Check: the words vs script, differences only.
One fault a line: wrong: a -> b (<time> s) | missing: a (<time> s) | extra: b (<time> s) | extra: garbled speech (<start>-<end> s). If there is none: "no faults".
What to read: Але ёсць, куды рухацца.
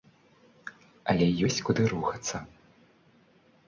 no faults